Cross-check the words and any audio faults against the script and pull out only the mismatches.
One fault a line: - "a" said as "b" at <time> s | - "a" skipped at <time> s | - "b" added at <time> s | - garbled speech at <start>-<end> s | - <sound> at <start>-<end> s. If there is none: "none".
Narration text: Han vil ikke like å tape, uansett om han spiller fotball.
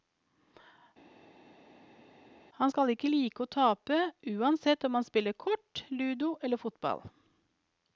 - "vil" said as "skal" at 2.7 s
- "kort ludo eller" added at 5.5 s